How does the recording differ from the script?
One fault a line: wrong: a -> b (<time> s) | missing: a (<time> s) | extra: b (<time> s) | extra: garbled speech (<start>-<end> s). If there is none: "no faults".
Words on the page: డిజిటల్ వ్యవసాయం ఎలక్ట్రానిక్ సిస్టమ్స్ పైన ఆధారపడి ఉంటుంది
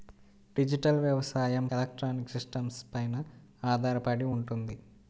no faults